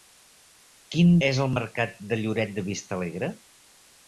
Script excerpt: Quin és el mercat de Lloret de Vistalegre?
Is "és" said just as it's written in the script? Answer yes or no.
yes